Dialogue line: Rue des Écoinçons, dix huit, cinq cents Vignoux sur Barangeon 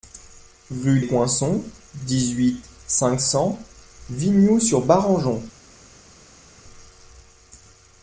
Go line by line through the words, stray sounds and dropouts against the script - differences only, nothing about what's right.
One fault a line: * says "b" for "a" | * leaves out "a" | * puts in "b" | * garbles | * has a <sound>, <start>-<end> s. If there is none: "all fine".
* leaves out "des"